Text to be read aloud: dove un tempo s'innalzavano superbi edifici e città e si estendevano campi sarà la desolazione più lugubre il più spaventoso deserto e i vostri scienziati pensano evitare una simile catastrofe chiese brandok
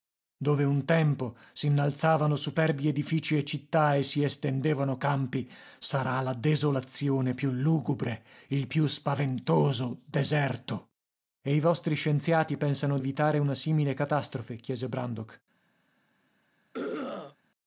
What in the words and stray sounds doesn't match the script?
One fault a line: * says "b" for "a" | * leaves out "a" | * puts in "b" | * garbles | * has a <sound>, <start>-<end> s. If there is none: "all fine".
* has a throat clearing, 16.7-17.4 s